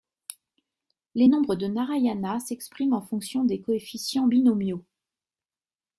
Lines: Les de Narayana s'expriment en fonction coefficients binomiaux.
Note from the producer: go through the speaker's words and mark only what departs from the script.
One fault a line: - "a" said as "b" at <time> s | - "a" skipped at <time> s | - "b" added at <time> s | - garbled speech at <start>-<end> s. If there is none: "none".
- "nombres" added at 1.3 s
- "des" added at 3.4 s